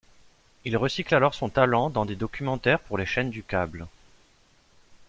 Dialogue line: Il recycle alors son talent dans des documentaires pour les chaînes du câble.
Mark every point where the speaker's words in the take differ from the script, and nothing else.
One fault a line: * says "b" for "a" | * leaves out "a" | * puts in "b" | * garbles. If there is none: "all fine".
all fine